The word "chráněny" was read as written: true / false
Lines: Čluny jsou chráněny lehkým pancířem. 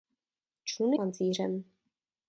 false